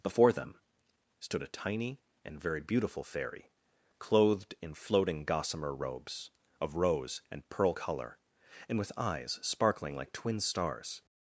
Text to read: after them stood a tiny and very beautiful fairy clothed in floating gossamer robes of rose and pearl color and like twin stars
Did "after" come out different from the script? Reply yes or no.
yes